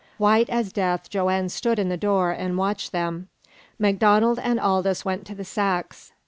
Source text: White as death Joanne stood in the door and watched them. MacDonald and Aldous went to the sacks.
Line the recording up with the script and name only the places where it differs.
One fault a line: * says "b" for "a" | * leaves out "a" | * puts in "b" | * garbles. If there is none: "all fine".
all fine